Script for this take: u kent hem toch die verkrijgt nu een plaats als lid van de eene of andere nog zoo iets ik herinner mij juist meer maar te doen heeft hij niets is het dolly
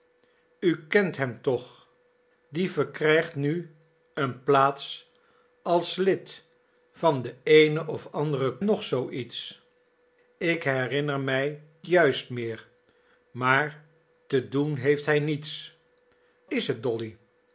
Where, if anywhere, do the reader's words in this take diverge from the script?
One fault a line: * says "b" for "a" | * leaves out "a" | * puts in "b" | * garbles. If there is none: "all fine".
all fine